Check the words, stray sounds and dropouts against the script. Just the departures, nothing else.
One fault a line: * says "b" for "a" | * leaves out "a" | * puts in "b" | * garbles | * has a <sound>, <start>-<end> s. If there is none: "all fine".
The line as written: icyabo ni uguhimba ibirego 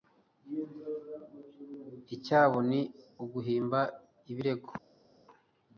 all fine